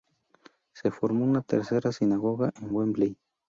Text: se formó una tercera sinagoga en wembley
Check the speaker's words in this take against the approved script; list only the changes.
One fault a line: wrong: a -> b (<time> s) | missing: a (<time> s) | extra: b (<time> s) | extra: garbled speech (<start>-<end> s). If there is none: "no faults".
no faults